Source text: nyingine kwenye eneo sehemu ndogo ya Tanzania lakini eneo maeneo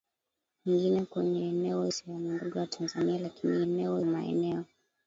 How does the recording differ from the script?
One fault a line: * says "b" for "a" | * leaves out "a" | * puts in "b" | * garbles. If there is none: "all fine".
all fine